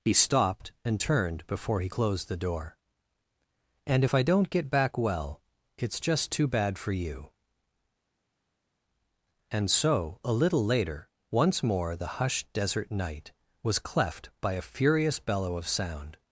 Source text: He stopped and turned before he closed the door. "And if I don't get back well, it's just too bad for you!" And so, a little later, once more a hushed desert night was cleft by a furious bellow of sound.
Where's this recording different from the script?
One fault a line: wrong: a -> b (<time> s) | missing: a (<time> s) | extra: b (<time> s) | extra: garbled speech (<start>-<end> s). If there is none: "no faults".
wrong: a -> the (11.9 s)